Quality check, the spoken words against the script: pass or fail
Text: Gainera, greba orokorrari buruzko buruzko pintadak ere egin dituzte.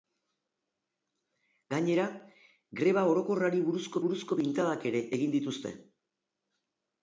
pass